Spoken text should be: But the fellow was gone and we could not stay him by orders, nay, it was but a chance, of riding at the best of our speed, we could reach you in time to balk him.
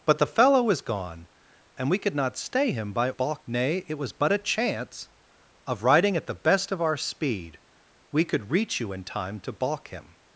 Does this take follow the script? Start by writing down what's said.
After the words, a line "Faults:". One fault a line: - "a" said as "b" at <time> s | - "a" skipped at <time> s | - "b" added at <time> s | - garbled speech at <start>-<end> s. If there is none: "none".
But the fellow was gone and we could not stay him by balk, nay, it was but a chance, of riding at the best of our speed, we could reach you in time to balk him.
Faults:
- "orders" said as "balk" at 3.1 s